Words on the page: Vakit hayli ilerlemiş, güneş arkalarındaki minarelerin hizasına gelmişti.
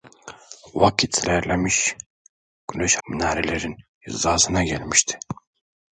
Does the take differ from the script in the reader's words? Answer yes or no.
yes